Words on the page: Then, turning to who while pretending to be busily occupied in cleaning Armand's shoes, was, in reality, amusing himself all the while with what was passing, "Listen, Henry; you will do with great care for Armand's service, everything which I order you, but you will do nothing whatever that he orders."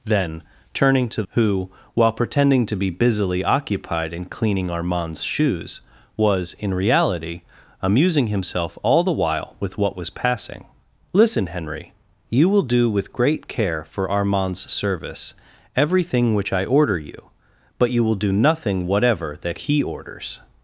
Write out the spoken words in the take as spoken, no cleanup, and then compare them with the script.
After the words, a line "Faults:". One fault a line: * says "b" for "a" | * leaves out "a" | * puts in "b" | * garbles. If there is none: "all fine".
Then, turning to who while pretending to be busily occupied in cleaning Armand's shoes, was, in reality, amusing himself all the while with what was passing, "Listen, Henry; you will do with great care for Armand's service, everything which I order you, but you will do nothing whatever that he orders."
Faults:
all fine